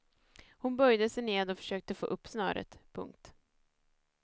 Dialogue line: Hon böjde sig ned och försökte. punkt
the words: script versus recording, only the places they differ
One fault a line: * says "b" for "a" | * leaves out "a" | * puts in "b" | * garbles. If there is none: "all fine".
* puts in "få upp snöret"